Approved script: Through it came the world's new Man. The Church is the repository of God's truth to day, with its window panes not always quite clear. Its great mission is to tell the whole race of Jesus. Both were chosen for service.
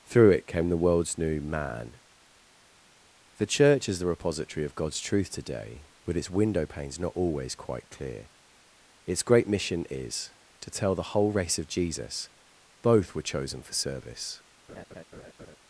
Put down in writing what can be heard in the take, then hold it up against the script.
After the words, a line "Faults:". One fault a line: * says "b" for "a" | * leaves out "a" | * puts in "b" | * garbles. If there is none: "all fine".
Through it came the world's new Man. The Church is the repository of God's truth today but its window panes not always quite clear. Its great mission is to tell the whole race of Jesus. Both were chosen for service.
Faults:
* says "today but" for "to day with"